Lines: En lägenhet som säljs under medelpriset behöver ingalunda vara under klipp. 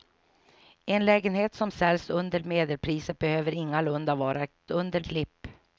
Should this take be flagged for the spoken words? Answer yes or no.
no